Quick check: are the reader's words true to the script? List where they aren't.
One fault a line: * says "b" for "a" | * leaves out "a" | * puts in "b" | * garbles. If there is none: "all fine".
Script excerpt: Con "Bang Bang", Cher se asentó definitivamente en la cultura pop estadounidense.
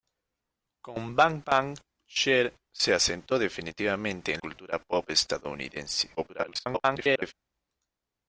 * leaves out "la"
* garbles